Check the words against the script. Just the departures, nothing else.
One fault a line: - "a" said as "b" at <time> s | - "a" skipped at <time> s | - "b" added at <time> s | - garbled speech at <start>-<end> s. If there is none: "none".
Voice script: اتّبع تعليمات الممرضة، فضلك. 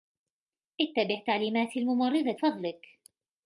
none